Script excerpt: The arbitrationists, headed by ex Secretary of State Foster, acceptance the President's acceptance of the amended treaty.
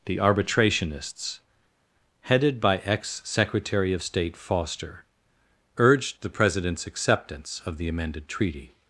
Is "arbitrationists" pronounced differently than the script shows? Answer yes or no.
no